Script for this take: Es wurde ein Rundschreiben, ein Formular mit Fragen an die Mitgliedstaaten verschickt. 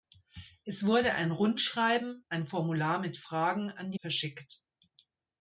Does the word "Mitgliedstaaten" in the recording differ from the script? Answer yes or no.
yes